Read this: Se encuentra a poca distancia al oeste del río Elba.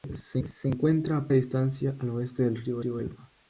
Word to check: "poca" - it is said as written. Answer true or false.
false